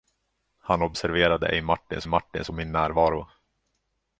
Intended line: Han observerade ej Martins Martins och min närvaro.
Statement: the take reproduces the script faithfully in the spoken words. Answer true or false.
true